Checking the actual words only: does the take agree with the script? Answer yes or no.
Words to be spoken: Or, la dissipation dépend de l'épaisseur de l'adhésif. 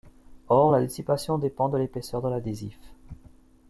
yes